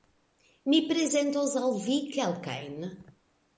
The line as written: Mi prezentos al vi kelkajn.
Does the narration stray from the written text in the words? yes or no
no